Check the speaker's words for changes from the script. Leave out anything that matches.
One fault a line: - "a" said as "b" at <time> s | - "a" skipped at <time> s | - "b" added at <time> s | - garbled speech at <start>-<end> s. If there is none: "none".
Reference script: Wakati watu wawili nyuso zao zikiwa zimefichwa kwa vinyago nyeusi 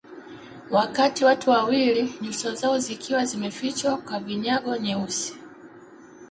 none